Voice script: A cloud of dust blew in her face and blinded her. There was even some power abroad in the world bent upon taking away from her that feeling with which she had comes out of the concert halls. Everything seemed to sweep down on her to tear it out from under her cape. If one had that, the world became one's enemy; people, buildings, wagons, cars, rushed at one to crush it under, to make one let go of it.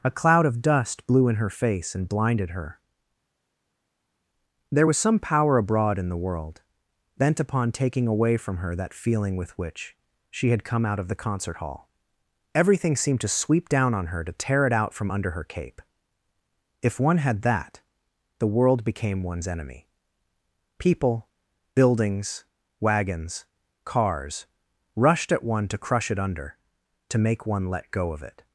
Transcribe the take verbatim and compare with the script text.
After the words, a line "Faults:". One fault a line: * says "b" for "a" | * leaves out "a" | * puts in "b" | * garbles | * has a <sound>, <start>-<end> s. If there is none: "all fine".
A cloud of dust blew in her face and blinded her. There was some power abroad in the world bent upon taking away from her that feeling with which she had come out of the concert hall. Everything seemed to sweep down on her to tear it out from under her cape. If one had that, the world became one's enemy; people, buildings, wagons, cars, rushed at one to crush it under, to make one let go of it.
Faults:
* leaves out "even"
* says "come" for "comes"
* says "hall" for "halls"